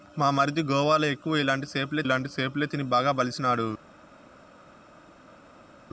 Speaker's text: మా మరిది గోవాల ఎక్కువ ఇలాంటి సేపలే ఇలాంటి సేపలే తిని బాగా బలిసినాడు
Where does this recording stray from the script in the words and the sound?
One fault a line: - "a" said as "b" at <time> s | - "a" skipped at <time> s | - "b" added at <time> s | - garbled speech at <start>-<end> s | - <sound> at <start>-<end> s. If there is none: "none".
none